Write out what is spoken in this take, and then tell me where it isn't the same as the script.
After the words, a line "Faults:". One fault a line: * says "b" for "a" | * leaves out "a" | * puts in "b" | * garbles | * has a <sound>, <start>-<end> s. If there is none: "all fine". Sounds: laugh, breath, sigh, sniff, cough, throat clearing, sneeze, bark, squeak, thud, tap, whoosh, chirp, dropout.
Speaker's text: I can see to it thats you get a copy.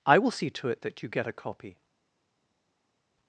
I will see to it that you get a copy.
Faults:
* says "will" for "can"
* says "that" for "thats"